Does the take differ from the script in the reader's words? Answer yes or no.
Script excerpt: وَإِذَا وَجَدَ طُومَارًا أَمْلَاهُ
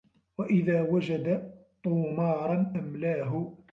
no